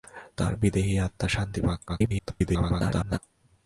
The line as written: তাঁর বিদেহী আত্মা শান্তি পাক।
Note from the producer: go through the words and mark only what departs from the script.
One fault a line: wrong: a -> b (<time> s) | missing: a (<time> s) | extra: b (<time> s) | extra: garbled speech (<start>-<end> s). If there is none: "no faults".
extra: garbled speech (1.9-3.2 s)